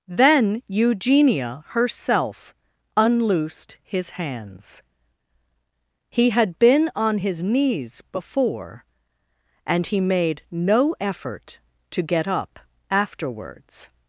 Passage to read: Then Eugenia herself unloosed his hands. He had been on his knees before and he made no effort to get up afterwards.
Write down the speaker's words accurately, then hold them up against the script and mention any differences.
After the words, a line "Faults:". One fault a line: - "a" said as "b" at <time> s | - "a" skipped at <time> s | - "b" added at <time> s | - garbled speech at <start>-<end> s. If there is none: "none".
Then Eugenia herself unloosed his hands. He had been on his knees before and he made no effort to get up afterwards.
Faults:
none